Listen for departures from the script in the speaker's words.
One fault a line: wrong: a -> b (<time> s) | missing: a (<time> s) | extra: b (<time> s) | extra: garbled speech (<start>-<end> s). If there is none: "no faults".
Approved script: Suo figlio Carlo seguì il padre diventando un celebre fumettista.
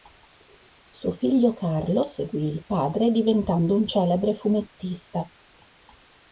no faults